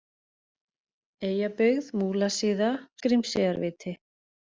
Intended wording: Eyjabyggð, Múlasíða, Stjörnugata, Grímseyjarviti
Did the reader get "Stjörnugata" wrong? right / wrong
wrong